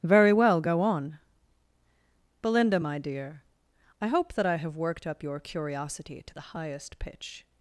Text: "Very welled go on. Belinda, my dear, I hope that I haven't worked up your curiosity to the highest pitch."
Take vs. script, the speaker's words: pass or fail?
fail